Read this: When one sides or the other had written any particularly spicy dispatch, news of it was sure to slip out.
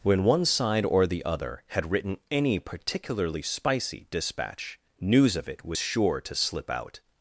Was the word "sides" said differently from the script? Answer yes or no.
yes